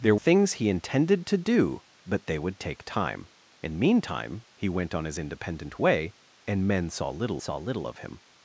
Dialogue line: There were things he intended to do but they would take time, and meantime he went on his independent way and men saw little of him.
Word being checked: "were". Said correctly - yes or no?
no